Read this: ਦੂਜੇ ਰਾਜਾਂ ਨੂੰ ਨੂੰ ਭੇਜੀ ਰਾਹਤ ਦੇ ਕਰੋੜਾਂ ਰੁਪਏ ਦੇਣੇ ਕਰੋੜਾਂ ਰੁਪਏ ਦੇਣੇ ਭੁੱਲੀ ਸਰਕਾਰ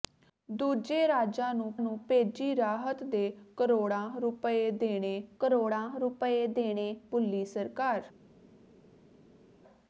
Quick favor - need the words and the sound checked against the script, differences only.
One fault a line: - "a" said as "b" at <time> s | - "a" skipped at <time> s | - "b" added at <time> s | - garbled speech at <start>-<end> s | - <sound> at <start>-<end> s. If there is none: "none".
none